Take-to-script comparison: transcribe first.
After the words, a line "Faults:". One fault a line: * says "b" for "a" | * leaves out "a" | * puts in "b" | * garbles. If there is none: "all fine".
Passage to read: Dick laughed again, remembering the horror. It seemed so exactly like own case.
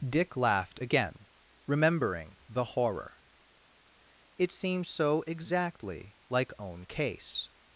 Dick laughed again, remembering the horror. It seemed so exactly like own case.
Faults:
all fine